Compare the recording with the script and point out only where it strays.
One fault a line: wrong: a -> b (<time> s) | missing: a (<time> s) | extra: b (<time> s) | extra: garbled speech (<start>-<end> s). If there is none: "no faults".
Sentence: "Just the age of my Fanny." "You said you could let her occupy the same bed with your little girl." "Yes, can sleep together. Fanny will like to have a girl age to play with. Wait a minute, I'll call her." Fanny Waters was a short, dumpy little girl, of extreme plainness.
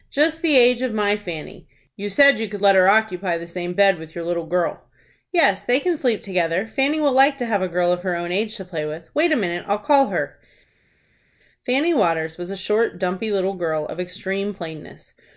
extra: they (5.6 s)
extra: of her own (7.9 s)